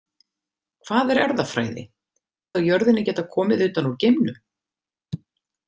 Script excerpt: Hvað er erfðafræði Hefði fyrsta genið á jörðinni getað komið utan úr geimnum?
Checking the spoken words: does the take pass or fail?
fail